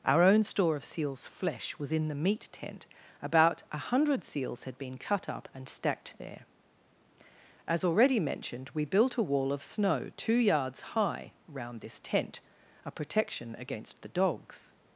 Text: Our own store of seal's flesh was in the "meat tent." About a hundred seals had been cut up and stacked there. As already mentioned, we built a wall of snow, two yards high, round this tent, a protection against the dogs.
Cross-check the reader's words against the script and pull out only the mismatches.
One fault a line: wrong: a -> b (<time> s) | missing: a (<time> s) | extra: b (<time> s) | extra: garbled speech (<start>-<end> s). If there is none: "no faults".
no faults